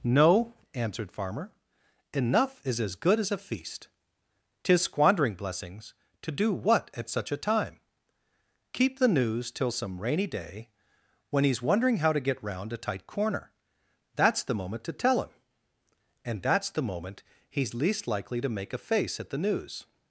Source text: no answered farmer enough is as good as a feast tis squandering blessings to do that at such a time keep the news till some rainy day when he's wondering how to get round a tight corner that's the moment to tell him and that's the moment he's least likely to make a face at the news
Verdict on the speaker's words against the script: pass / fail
fail